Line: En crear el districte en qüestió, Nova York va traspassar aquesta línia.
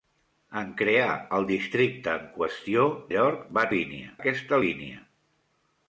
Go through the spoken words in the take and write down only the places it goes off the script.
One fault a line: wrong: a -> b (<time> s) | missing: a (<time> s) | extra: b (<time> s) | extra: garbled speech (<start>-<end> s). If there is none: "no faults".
missing: Nova (2.9 s)
wrong: traspassar -> línia (3.8 s)